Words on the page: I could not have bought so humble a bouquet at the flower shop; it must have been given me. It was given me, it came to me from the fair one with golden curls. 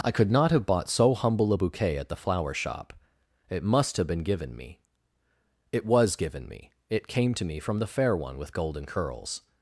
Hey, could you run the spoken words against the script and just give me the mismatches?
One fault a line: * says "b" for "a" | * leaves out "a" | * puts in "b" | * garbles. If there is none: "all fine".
all fine